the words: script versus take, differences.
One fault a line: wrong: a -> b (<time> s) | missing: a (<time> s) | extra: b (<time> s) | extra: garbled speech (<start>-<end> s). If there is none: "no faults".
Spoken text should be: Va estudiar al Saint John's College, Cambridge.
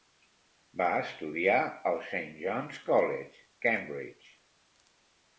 no faults